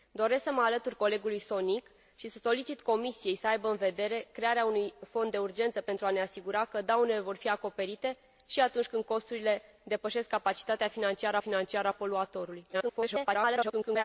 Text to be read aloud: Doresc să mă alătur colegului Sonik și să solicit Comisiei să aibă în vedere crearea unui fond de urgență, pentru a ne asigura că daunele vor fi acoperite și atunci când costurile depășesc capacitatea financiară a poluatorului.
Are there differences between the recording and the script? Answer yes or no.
yes